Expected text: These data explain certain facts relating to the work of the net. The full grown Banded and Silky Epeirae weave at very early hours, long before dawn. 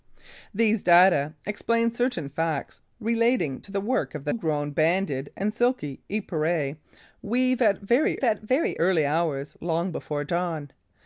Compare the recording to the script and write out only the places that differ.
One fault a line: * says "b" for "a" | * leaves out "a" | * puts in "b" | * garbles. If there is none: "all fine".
* leaves out "net The full"
* puts in "at very"